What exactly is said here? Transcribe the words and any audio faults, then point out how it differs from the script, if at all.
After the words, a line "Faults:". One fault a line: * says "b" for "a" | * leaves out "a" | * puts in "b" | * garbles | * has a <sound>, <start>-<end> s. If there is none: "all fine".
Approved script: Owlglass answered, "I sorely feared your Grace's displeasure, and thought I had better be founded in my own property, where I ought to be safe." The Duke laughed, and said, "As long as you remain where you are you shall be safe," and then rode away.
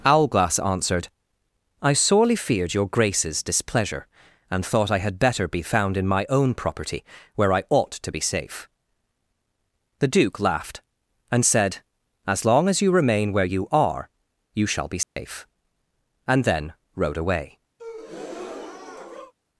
Owlglass answered, "I sorely feared your Grace's displeasure, and thought I had better be found in my own property, where I ought to be safe." The Duke laughed, and said, "As long as you remain where you are you shall be safe," and then rode away.
Faults:
* says "found" for "founded"
* has a dropout, 15.0-15.2 s
* has a breath, 17.8-19.3 s